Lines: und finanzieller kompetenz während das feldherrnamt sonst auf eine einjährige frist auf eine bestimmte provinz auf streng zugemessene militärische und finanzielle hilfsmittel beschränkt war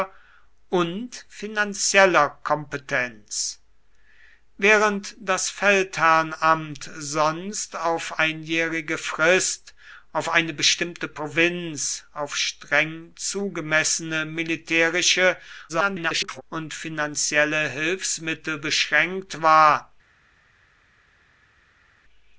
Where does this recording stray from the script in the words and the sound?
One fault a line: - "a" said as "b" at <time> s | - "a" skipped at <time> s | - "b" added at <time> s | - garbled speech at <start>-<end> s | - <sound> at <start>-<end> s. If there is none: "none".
- "eine" skipped at 8.2 s
- garbled speech at 15.7-16.4 s